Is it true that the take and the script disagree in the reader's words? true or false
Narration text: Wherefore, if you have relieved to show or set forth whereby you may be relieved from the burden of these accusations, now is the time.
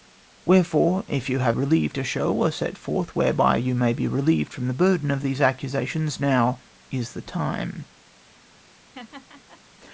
false